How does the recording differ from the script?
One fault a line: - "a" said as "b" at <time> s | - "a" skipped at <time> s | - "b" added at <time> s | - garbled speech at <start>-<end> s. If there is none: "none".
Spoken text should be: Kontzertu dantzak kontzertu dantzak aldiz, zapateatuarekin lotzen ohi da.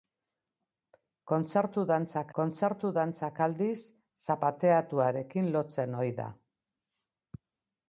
none